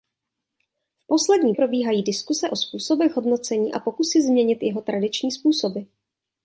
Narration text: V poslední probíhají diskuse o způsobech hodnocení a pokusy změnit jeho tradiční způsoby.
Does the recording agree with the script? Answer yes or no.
yes